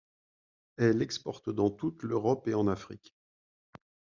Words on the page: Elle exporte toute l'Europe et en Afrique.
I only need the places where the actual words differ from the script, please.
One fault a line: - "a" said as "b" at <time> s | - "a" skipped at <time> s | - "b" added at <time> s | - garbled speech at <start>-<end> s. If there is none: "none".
- "dans" added at 1.5 s